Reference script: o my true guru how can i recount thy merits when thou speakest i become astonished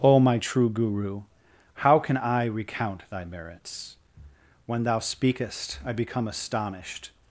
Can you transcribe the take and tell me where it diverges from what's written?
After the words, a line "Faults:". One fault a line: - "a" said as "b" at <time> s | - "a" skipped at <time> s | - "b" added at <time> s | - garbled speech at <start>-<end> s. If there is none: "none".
o my true guru how can i recount thy merits when thou speakest i become astonished
Faults:
none